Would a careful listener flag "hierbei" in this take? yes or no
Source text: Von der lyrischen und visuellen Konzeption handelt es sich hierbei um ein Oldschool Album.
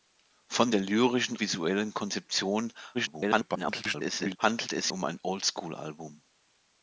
yes